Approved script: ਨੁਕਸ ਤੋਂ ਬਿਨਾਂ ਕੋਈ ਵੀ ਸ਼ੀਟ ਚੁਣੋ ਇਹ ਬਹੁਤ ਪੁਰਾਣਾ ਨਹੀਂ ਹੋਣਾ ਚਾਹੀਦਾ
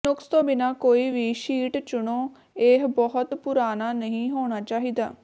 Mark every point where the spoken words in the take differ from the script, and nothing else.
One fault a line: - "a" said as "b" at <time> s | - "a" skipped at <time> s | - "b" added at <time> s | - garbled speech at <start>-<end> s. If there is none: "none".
none